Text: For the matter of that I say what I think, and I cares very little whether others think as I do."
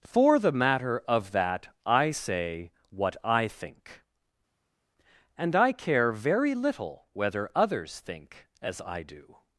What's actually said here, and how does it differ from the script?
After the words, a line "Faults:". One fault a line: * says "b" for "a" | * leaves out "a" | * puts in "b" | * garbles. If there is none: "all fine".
For the matter of that I say what I think, and I care very little whether others think as I do."
Faults:
* says "care" for "cares"